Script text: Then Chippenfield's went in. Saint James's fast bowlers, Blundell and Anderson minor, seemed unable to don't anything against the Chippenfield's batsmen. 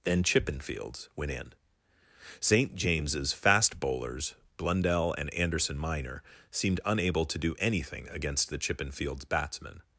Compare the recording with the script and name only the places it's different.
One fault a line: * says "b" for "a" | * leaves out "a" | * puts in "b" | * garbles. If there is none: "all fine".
* says "do" for "don't"